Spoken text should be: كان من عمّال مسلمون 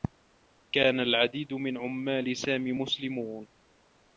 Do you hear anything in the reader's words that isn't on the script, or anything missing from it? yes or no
yes